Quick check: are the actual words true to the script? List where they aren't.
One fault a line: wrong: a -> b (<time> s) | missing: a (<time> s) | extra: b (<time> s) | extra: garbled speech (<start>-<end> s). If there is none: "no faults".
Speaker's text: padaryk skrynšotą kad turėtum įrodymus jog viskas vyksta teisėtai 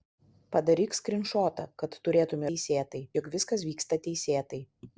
wrong: įrodymus -> teisėtai (2.5 s)